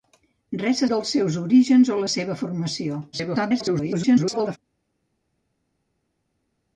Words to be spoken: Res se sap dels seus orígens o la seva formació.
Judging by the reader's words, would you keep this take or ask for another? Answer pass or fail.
fail